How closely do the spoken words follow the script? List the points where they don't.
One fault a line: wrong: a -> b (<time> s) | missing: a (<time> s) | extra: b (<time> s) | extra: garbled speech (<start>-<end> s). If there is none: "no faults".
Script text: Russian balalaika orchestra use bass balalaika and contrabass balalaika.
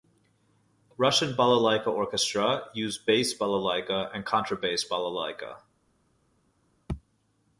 no faults